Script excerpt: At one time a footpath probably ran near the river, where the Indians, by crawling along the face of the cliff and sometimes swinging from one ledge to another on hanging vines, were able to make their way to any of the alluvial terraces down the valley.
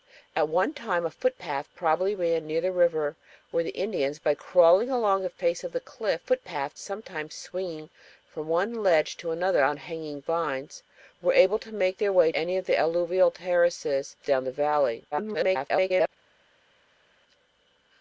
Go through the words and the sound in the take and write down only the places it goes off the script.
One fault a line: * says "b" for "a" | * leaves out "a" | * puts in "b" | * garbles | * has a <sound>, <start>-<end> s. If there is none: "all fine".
* says "footpath" for "and"
* leaves out "to"
* garbles